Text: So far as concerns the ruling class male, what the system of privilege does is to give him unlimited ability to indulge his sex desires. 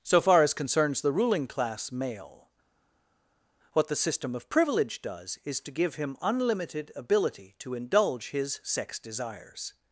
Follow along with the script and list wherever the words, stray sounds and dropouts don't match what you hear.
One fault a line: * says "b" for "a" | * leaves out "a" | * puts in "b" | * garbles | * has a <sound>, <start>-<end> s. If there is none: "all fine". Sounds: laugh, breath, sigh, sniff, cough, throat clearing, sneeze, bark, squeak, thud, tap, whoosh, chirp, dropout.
all fine